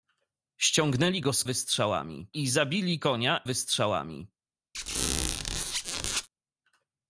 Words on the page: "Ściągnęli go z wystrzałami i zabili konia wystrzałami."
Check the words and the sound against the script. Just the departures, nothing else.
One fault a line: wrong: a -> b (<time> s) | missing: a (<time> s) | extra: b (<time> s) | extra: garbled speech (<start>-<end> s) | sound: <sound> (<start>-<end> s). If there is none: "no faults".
sound: squeak (4.7-6.3 s)